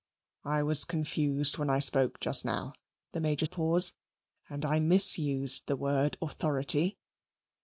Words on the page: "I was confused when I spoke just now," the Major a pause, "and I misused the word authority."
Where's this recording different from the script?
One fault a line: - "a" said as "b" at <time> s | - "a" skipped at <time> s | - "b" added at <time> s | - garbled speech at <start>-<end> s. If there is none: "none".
none